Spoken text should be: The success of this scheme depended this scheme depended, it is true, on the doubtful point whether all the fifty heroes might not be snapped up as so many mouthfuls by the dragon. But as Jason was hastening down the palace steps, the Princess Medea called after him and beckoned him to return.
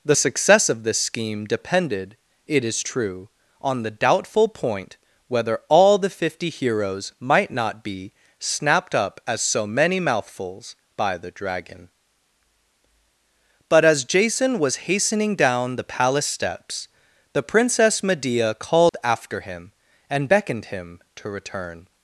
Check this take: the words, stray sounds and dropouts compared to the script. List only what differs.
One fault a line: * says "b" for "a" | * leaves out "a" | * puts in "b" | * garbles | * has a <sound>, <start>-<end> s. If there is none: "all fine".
* leaves out "this scheme depended"
* has a dropout, 18.9-18.9 s